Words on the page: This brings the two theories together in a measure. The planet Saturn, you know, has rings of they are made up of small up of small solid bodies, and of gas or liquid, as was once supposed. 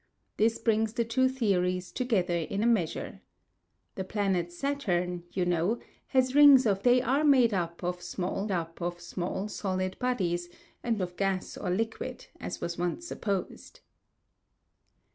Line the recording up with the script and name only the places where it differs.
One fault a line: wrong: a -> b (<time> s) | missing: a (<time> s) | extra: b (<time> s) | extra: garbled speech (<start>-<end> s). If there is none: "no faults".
no faults